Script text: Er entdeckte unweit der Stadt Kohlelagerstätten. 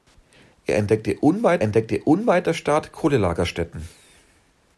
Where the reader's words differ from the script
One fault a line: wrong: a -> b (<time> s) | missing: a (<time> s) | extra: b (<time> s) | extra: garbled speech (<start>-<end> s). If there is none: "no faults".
extra: entdeckte unweit (1.6 s)